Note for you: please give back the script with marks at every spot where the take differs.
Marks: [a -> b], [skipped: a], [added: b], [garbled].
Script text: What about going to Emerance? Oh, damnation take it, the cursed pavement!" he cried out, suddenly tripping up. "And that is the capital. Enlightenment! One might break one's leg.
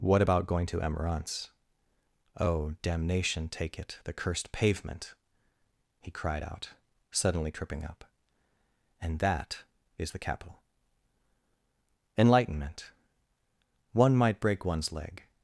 What about going to Emerance? Oh, damnation take it, the cursed pavement!" he cried out, suddenly tripping up. "And that is the capital. Enlightenment! One might break one's leg.